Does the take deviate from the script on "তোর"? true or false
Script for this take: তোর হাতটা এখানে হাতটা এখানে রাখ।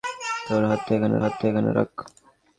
false